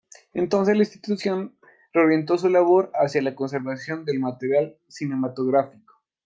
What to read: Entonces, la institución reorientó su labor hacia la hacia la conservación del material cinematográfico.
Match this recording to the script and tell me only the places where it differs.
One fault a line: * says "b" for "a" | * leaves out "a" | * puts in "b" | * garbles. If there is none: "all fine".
* leaves out "hacia la"